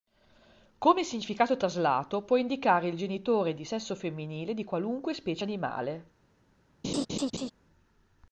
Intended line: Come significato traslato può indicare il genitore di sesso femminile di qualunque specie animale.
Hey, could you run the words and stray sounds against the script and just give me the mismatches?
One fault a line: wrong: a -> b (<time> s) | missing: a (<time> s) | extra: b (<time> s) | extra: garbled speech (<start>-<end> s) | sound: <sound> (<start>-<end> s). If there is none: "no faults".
sound: laugh (6.8-7.5 s)